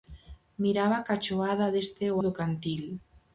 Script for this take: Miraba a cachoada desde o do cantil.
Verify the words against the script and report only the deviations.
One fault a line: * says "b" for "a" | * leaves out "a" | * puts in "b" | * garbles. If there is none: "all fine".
all fine